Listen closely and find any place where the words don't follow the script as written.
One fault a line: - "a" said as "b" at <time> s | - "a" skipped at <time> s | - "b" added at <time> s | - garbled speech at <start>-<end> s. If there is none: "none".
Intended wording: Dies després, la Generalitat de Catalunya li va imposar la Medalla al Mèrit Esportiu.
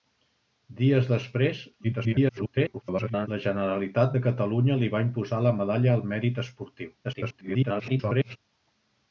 - garbled speech at 1.8-3.3 s
- garbled speech at 7.0-8.4 s